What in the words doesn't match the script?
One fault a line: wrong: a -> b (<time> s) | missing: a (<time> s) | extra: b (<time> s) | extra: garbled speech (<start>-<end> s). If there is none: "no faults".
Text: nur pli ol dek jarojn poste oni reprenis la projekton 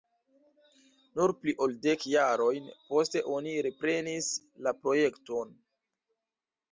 no faults